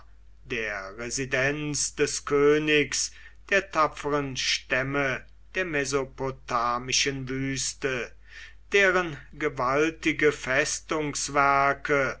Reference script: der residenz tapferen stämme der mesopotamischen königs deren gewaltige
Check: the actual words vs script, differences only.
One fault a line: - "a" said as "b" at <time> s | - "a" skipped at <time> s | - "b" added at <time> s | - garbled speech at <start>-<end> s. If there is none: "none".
- "des königs der" added at 1.9 s
- "königs" said as "wüste" at 7.3 s